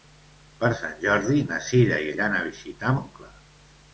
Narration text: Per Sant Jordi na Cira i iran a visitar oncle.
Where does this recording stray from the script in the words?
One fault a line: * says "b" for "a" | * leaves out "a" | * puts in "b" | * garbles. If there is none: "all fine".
all fine